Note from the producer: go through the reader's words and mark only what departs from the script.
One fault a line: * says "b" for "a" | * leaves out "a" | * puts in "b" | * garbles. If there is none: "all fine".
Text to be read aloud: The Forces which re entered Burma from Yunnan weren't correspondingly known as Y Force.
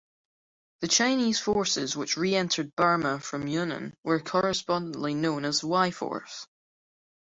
* puts in "Chinese"
* says "were" for "weren't"